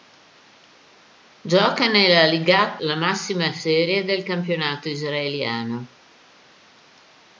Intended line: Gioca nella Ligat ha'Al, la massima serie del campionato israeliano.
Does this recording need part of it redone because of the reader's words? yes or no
yes